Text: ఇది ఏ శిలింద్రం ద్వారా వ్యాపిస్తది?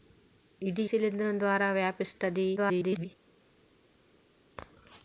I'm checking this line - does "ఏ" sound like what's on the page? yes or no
no